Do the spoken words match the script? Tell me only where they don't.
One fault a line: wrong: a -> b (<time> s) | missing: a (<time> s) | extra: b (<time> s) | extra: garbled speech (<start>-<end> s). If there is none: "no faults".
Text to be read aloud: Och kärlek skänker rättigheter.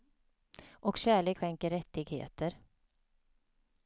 no faults